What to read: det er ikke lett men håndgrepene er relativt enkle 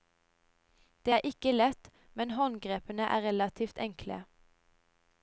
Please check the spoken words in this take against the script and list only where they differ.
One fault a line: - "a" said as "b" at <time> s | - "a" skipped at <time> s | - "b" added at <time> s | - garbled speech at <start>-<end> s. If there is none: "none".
none